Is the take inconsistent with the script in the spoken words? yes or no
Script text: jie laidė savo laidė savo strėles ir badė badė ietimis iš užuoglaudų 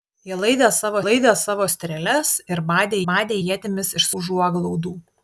no